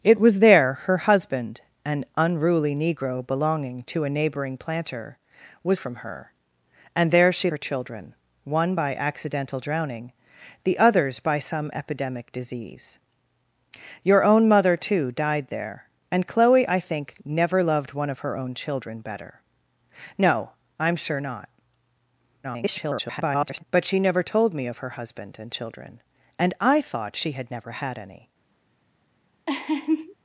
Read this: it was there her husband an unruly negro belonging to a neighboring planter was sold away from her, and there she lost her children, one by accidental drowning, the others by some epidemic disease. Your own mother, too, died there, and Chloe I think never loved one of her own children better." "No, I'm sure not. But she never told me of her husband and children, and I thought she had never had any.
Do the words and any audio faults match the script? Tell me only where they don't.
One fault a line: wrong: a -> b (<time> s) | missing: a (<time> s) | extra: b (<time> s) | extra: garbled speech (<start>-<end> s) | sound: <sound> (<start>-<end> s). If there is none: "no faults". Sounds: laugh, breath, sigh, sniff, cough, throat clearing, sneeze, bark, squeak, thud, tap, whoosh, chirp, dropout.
missing: sold away (5.8 s)
missing: lost (7.5 s)
extra: garbled speech (22.4-23.6 s)
sound: laugh (29.5-30.1 s)